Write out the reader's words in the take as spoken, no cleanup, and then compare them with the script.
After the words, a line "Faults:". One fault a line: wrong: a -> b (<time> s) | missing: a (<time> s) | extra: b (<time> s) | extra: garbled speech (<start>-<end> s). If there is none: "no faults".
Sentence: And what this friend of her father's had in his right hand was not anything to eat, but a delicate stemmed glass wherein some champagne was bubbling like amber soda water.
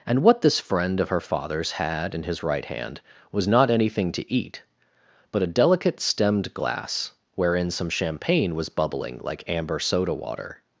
And what this friend of her father's had in his right hand was not anything to eat, but a delicate stemmed glass wherein some champagne was bubbling like amber soda water.
Faults:
no faults